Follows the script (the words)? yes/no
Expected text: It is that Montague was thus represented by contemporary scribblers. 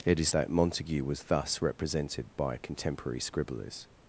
yes